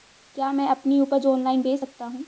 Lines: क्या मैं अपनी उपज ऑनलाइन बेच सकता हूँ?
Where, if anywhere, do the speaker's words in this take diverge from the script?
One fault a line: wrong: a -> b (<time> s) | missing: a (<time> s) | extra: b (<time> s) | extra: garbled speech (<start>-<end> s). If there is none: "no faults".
no faults